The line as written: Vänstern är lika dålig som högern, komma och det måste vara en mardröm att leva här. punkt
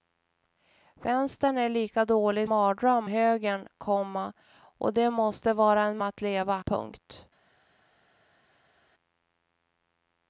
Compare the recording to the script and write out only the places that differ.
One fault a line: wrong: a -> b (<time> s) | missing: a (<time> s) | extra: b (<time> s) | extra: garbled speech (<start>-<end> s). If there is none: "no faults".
wrong: som -> mardröm (2.4 s)
missing: mardröm (6.0 s)
missing: här (6.6 s)